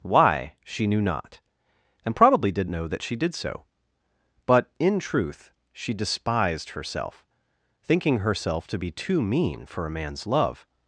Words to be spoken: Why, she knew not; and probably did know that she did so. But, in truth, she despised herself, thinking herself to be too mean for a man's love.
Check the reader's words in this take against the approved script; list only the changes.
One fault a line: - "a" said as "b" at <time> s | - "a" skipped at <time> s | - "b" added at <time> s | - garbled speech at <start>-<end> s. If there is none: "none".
none